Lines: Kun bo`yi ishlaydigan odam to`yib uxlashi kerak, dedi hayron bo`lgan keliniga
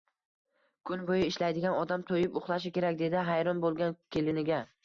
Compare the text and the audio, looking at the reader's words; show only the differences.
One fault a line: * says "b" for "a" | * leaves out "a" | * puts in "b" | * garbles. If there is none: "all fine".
all fine